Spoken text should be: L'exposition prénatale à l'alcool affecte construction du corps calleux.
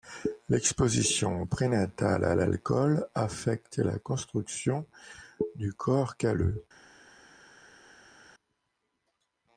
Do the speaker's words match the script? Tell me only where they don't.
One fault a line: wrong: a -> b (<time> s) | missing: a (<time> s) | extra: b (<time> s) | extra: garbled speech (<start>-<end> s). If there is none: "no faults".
extra: la (3.8 s)